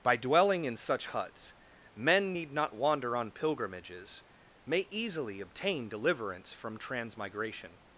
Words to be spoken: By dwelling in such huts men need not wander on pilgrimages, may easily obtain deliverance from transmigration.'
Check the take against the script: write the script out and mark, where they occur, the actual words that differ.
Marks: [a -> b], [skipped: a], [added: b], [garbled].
By dwelling in such huts men need not wander on pilgrimages, may easily obtain deliverance from transmigration.'